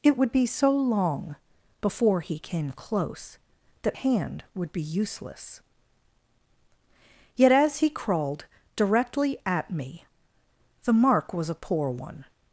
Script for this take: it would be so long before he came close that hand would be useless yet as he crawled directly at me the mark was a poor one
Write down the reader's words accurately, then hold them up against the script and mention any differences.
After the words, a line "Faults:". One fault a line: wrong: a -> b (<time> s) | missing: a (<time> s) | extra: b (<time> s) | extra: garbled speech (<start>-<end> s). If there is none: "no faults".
it would be so long before he came close that hand would be useless yet as he crawled directly at me the mark was a poor one
Faults:
no faults